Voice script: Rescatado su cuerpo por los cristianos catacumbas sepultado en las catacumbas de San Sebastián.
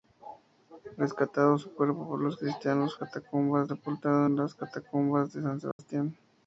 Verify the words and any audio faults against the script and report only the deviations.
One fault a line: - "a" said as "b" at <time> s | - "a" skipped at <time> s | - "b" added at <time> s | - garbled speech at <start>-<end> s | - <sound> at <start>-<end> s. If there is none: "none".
- dropout at 5.7-5.8 s